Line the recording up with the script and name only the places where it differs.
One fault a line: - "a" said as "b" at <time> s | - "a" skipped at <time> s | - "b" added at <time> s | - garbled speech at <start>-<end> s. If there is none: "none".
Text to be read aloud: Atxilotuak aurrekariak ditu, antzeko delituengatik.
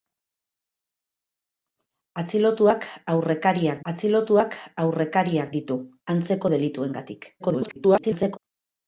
- "atxilotuak aurrekariak" added at 3.9 s
- garbled speech at 7.4-8.4 s